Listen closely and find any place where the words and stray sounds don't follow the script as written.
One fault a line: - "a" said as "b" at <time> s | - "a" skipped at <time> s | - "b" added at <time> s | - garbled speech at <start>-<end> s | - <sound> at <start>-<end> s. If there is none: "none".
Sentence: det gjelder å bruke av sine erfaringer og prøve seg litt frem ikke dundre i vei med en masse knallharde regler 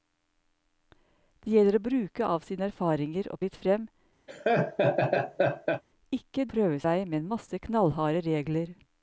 - "prøve seg" skipped at 3.4 s
- laugh at 4.3-5.8 s
- "dundre" said as "prøve" at 6.5 s